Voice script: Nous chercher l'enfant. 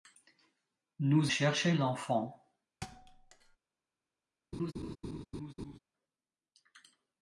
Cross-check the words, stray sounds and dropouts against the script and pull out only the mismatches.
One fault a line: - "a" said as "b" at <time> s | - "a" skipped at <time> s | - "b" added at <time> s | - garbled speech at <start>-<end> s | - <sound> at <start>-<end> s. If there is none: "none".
- thud at 2.8-3.6 s
- laugh at 4.5-5.8 s